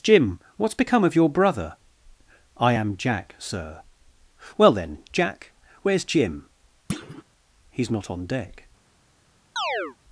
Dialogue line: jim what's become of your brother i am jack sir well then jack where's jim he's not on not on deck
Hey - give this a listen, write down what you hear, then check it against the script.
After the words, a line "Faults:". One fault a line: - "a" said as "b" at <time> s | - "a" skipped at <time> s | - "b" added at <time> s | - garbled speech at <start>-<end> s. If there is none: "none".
jim what's become of your brother i am jack sir well then jack where's jim he's not on deck
Faults:
- "not on" skipped at 8.3 s